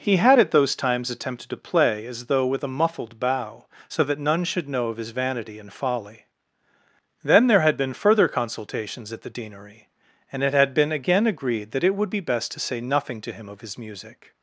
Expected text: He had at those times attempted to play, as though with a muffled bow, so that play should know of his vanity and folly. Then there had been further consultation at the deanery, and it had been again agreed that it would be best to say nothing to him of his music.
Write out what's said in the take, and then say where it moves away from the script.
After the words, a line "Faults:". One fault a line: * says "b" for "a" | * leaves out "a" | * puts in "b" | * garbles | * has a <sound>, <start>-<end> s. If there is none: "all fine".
He had at those times attempted to play, as though with a muffled bow, so that none should know of his vanity and folly. Then there had been further consultations at the deanery, and it had been again agreed that it would be best to say nothing to him of his music.
Faults:
* says "none" for "play"
* says "consultations" for "consultation"